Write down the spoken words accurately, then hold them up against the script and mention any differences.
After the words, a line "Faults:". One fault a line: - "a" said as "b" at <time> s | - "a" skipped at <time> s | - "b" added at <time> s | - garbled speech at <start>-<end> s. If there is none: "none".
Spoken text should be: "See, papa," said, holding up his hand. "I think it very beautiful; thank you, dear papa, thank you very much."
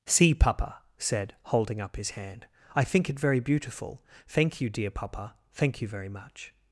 "See, papa," said, holding up his hand. "I think it very beautiful; thank you, dear papa, thank you very much."
Faults:
none